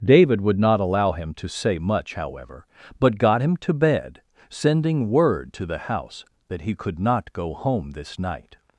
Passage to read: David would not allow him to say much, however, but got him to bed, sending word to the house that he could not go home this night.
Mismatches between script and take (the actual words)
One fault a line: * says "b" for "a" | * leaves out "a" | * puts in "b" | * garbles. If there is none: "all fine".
all fine